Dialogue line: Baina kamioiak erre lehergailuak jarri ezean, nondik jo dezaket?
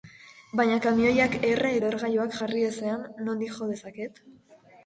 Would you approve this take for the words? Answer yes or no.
yes